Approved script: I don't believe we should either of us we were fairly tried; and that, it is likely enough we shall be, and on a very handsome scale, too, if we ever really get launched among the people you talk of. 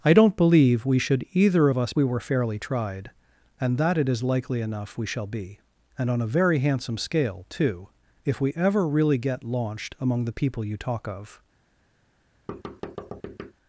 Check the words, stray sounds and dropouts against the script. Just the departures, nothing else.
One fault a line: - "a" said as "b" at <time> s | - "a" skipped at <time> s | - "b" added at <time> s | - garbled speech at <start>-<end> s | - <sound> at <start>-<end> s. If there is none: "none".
- thud at 12.5-13.5 s